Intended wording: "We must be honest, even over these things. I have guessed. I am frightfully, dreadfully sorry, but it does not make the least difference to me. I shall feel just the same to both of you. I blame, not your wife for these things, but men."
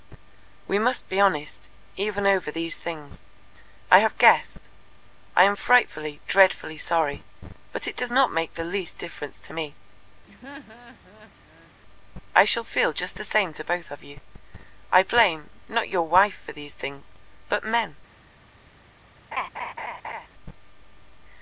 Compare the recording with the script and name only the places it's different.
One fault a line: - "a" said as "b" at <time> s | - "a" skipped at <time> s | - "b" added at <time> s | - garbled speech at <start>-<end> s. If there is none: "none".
none